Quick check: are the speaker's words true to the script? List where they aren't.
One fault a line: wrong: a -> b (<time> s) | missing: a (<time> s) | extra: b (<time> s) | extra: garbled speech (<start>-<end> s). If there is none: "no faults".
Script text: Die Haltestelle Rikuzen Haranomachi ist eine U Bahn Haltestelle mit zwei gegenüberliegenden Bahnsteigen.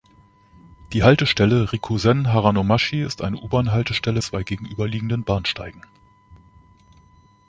missing: mit (4.2 s)